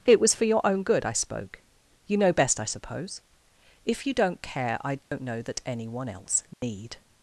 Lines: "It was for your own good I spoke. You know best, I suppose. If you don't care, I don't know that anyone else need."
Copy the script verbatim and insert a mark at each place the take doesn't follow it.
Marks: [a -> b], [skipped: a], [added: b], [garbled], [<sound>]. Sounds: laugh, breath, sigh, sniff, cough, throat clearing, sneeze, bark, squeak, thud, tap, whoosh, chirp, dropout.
"It was for your own good I spoke. You know best, I suppose. If you don't care, I don't [dropout] know that anyone else need." [dropout]